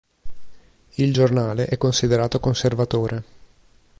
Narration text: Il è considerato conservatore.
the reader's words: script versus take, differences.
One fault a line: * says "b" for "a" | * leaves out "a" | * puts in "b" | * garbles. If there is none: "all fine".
* puts in "giornale"